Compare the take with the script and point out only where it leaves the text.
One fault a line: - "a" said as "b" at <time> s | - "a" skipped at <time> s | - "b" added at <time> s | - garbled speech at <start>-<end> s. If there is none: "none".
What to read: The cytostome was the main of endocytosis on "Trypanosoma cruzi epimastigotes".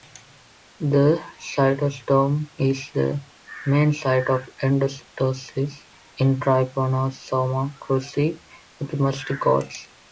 - "was" said as "is" at 2.6 s
- "site" added at 3.9 s
- "on" said as "in" at 6.2 s